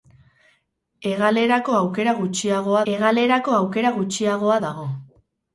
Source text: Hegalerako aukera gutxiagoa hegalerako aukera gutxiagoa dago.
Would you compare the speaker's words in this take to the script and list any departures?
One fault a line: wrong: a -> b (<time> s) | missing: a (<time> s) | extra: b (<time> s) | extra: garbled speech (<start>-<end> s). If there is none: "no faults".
no faults